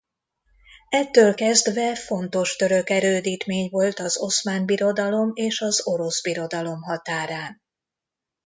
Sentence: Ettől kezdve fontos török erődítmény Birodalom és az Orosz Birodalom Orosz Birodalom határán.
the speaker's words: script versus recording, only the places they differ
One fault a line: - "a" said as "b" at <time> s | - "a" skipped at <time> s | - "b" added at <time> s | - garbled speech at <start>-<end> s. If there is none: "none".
- "volt az Oszmán" added at 3.7 s
- "Orosz Birodalom" skipped at 6.8 s